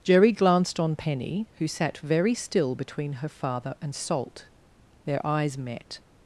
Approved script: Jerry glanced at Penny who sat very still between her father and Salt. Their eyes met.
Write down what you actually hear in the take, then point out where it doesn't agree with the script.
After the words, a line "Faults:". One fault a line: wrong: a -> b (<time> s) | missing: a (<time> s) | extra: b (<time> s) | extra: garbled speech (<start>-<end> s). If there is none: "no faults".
Jerry glanced on Penny who sat very still between her father and Salt. Their eyes met.
Faults:
wrong: at -> on (0.8 s)